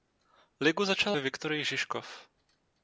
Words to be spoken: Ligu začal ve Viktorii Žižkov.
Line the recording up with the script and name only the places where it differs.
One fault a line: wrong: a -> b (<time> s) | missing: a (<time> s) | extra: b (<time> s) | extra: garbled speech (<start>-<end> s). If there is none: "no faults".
no faults